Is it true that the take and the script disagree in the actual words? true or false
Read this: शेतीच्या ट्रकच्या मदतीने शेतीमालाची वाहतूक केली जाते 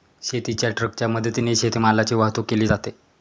false